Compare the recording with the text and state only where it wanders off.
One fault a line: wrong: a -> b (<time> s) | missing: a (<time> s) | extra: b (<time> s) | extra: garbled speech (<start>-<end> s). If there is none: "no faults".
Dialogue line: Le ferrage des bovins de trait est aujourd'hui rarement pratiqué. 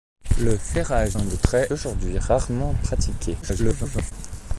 missing: des bovins (1.2 s)
missing: est (1.7 s)
extra: garbled speech (3.4-4.1 s)